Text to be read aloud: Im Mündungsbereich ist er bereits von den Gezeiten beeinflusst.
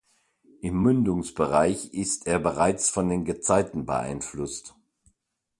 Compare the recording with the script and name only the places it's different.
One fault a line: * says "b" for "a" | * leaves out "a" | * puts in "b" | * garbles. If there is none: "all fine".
all fine